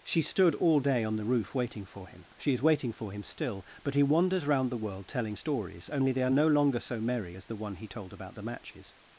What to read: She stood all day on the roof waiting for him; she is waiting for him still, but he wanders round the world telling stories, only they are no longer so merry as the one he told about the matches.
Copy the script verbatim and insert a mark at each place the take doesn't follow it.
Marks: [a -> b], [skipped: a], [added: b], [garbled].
She stood all day on the roof waiting for him; she is waiting for him still, but he wanders round the world telling stories, only they are no longer so merry as the one he told about the matches.